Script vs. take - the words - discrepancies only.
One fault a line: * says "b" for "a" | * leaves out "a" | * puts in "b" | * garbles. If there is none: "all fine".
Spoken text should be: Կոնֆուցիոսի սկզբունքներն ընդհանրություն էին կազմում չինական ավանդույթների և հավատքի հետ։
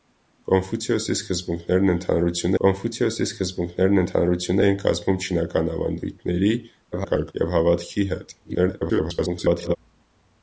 * puts in "կոնֆուցիոսի սկզբունքներն ընդհանրություն"
* garbles
* garbles